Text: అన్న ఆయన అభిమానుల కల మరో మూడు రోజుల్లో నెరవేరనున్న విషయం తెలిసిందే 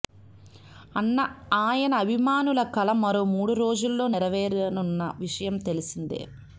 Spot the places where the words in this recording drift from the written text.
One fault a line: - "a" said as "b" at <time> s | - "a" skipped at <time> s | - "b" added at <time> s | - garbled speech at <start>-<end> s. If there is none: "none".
none